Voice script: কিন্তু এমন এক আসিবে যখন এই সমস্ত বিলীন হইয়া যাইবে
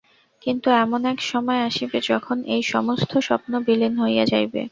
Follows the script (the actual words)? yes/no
no